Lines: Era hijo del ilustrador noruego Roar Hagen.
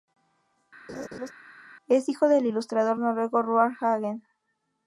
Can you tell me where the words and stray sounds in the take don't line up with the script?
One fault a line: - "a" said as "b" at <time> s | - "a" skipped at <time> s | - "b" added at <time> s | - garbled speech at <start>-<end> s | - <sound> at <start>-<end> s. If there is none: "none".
- laugh at 0.9-1.3 s
- "Era" said as "Es" at 1.9 s